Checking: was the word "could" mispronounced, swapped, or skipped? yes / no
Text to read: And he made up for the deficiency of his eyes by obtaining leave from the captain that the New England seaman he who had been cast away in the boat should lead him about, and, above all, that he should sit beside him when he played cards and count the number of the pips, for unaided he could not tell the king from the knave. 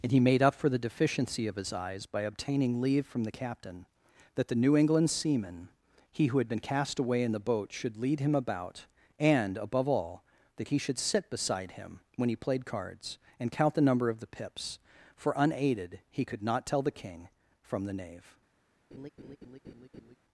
no